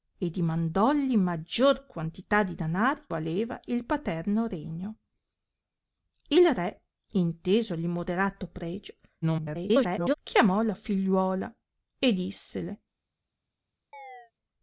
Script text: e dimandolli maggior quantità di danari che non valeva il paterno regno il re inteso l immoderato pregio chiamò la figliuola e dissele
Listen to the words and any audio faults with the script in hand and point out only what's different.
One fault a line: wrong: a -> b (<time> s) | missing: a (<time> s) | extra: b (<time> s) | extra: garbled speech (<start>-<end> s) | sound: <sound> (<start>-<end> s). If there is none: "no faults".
missing: che non (3.0 s)
extra: garbled speech (9.2-10.1 s)
sound: chirp (13.9-14.3 s)